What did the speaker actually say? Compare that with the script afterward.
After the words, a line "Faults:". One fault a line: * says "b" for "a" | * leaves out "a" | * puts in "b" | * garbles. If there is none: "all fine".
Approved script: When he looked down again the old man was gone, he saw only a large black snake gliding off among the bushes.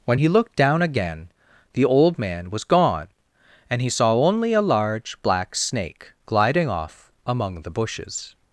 When he looked down again the old man was gone, and he saw only a large black snake gliding off among the bushes.
Faults:
* puts in "and"